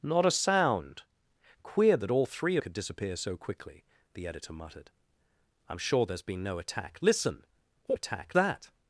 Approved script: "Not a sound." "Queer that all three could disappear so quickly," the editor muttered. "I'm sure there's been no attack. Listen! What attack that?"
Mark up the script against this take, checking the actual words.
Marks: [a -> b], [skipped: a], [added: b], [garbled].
"Not a sound." "Queer that all three could disappear so quickly," the editor muttered. "I'm sure there's been no attack. Listen! What attack that?"